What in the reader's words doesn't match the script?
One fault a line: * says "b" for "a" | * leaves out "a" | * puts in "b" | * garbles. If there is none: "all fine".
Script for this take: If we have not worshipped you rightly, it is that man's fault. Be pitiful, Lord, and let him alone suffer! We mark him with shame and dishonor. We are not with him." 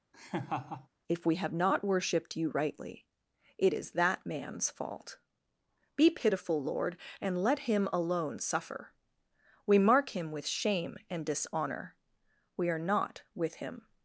all fine